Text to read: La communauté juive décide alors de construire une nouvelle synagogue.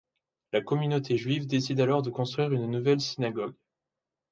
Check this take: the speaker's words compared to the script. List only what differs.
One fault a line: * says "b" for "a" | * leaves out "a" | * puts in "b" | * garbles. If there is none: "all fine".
all fine